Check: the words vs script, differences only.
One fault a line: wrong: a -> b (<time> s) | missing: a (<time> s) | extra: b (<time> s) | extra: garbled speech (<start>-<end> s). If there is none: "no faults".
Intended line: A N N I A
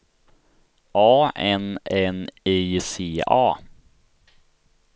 extra: C (2.8 s)